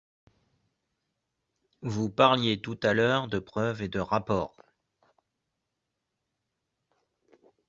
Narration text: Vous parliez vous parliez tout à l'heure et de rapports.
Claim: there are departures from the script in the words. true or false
true